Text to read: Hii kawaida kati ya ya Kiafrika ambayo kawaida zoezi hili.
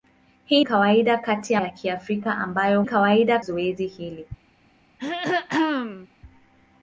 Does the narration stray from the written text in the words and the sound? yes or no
yes